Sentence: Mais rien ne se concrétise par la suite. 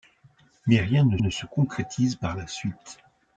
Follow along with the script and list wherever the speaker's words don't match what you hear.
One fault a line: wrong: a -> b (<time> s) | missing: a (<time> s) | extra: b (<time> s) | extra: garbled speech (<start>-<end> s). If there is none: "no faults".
extra: ne (1.2 s)